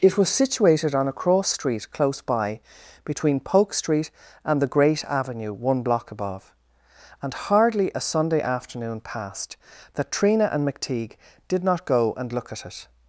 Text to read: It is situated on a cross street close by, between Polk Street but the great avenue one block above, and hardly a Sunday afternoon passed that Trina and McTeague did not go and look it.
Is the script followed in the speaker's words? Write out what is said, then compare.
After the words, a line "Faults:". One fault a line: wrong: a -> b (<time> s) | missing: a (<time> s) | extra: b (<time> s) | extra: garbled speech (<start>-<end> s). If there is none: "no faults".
It was situated on a cross street close by, between Polk Street and the great avenue one block above, and hardly a Sunday afternoon passed that Trina and McTeague did not go and look at it.
Faults:
wrong: is -> was (0.2 s)
wrong: but -> and (4.5 s)
extra: at (12.5 s)